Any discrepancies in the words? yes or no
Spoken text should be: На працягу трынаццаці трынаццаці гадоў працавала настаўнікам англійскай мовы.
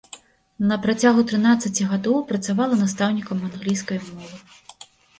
yes